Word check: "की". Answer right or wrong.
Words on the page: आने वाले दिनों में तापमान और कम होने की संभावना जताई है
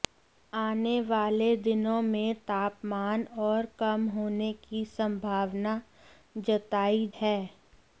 right